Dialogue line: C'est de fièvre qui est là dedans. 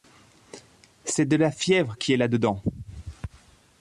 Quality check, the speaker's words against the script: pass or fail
fail